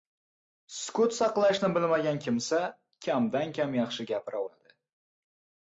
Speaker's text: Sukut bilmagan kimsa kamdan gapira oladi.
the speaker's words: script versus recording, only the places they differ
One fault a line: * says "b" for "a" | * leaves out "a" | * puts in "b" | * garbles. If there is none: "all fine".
* puts in "saqlashni"
* puts in "kam yaxshi"